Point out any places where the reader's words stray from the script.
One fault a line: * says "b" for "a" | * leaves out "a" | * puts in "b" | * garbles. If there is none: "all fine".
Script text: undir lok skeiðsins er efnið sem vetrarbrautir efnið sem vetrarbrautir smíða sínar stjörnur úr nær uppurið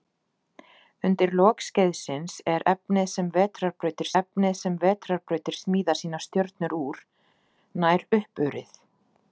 all fine